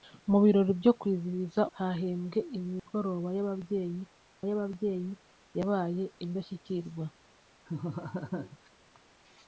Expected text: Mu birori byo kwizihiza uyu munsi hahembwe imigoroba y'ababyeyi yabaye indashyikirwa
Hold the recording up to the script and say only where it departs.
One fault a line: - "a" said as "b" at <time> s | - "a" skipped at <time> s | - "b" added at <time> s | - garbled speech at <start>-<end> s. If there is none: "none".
- "uyu munsi" skipped at 1.6 s
- "y'ababyeyi" added at 4.5 s